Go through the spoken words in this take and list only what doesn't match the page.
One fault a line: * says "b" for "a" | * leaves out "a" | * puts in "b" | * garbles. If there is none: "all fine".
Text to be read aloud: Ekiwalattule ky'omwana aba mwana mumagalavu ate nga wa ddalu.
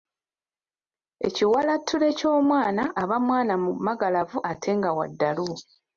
all fine